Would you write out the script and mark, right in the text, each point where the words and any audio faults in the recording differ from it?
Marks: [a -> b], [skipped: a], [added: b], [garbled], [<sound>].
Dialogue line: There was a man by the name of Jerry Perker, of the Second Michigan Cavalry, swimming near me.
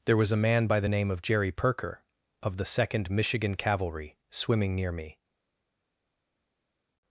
There was a man by the name of Jerry Perker, of the Second Michigan Cavalry, swimming near me.